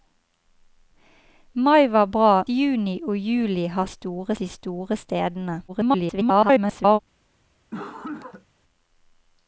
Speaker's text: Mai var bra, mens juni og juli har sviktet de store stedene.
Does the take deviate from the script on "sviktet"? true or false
true